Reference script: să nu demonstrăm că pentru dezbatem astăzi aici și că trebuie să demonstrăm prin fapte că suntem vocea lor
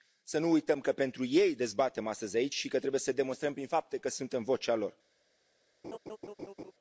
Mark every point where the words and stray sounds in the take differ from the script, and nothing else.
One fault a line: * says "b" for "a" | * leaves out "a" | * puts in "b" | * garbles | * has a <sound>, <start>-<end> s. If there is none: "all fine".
* says "uităm" for "demonstrăm"
* puts in "ei"
* has a laugh, 5.8-6.7 s